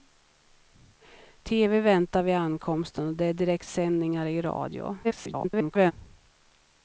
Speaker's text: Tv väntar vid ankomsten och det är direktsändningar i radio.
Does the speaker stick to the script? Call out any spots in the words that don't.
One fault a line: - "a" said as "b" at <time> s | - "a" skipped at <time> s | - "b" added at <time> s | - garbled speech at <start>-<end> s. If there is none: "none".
- garbled speech at 5.0-5.9 s